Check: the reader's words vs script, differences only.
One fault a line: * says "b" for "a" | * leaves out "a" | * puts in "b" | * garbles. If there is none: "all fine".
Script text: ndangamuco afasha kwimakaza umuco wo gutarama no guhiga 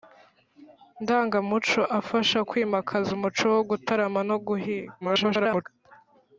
* garbles